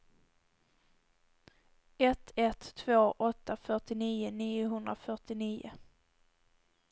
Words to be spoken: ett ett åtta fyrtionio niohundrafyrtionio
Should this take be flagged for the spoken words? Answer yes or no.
yes